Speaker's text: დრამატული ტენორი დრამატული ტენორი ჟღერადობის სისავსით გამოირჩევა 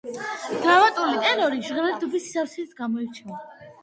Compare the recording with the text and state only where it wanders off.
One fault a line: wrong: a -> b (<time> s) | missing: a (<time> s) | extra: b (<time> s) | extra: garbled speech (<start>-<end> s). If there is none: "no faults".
missing: დრამატული ტენორი (1.6 s)